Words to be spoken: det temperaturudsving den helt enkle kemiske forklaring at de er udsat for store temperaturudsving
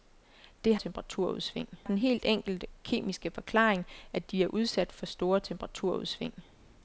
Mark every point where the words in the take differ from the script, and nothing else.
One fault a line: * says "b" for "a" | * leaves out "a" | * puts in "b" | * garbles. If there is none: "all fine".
all fine